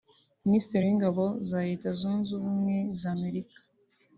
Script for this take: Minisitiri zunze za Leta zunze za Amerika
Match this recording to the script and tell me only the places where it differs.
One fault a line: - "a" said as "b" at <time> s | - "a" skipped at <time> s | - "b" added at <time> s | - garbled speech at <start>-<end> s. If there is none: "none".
- "zunze" said as "w'ingabo" at 0.9 s
- "ubumwe" added at 2.4 s